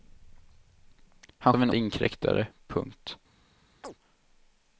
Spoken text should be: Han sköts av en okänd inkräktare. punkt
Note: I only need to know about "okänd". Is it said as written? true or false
false